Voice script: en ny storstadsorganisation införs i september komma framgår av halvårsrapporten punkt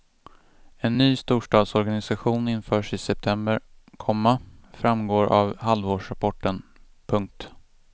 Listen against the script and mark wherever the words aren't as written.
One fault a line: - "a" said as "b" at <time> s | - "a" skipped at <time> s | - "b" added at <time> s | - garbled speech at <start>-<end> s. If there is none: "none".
none